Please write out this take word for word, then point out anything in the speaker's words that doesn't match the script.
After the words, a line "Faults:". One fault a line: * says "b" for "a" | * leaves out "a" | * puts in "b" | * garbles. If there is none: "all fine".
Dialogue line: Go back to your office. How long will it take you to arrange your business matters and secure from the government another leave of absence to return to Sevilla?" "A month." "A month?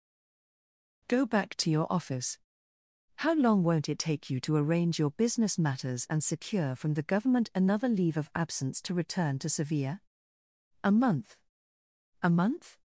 Go back to your office. How long won't it take you to arrange your business matters and secure from the government another leave of absence to return to Sevilla?" "A month." "A month?
Faults:
* says "won't" for "will"